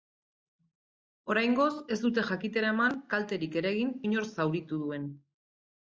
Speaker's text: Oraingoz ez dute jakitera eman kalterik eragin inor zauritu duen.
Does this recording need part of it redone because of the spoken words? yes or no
no